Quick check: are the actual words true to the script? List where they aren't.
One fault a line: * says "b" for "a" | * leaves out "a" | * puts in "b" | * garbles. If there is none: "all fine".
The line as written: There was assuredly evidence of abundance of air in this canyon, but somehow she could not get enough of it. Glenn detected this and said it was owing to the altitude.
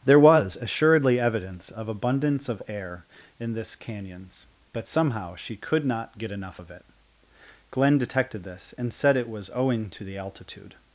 * says "canyons" for "canyon"